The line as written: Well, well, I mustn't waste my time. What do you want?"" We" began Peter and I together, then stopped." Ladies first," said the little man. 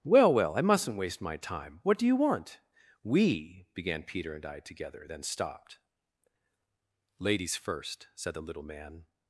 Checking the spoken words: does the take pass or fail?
pass